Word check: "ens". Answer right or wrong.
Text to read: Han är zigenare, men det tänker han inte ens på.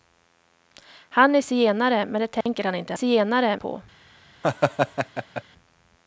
wrong